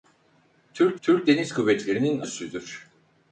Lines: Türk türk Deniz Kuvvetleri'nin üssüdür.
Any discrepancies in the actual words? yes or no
no